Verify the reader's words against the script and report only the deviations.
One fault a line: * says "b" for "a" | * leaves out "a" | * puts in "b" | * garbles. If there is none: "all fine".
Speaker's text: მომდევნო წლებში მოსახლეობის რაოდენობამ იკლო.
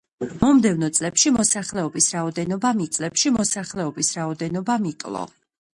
* puts in "წლებში მოსახლეობის რაოდენობამ"